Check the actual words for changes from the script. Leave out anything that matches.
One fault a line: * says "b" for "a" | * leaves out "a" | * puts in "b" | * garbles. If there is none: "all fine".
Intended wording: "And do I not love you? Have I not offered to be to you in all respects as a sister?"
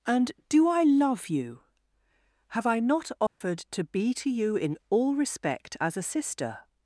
* leaves out "not"
* says "respect" for "respects"